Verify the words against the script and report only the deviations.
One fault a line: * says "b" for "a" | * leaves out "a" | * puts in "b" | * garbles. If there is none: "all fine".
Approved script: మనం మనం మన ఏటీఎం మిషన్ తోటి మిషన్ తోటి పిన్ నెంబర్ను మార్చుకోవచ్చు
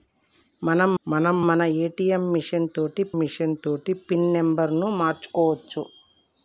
all fine